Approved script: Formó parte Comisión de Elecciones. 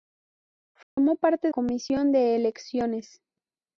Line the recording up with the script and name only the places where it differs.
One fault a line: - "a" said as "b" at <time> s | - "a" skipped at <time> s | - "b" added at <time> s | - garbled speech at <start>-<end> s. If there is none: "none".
none